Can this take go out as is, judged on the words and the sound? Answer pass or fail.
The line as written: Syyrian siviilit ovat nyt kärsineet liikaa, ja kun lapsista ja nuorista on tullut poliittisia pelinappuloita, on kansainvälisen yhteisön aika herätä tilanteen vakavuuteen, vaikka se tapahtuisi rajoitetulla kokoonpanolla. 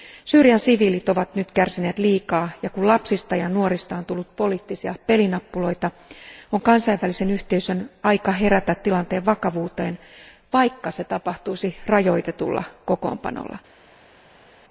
pass